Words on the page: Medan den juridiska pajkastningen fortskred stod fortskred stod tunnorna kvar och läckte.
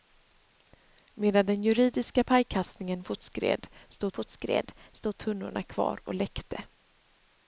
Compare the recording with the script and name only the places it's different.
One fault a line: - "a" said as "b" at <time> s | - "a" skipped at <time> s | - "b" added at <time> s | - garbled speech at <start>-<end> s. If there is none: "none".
none